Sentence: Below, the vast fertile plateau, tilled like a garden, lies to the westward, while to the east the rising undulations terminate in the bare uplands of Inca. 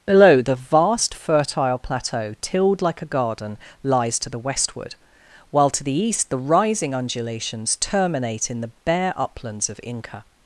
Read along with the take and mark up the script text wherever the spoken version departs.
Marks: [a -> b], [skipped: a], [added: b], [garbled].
Below, the vast fertile plateau, tilled like a garden, lies to the westward, while to the east the rising undulations terminate in the bare uplands of Inca.